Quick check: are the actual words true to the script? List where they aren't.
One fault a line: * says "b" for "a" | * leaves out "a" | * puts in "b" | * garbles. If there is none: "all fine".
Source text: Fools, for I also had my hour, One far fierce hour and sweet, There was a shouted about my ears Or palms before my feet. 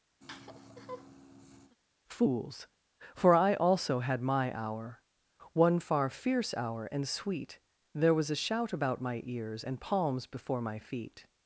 * says "shout" for "shouted"
* says "And" for "Or"